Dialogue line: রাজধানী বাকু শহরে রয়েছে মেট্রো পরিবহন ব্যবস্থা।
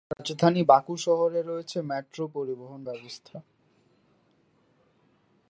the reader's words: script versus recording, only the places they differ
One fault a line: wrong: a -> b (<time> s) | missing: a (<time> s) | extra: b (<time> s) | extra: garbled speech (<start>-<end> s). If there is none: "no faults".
no faults